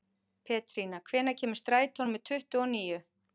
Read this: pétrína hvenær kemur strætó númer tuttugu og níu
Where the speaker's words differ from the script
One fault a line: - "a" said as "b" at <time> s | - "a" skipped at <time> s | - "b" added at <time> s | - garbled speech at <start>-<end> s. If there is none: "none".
none